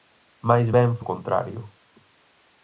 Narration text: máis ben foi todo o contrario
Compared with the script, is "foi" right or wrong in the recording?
wrong